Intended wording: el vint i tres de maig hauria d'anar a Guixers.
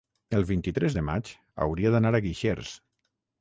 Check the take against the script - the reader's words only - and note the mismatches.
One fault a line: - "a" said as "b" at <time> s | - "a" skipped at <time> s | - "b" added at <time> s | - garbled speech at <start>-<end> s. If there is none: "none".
none